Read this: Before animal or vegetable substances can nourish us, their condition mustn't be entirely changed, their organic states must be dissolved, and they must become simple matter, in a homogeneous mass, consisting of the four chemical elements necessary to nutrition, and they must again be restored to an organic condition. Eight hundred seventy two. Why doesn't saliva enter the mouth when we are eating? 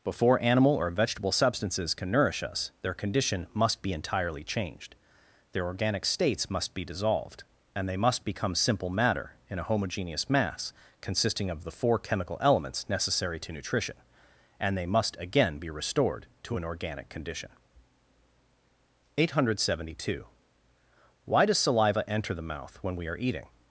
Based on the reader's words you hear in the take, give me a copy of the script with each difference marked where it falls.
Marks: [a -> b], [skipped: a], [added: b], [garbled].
Before animal or vegetable substances can nourish us, their condition [mustn't -> must] be entirely changed, their organic states must be dissolved, and they must become simple matter, in a homogeneous mass, consisting of the four chemical elements necessary to nutrition, and they must again be restored to an organic condition. Eight hundred seventy two. Why [doesn't -> does] saliva enter the mouth when we are eating?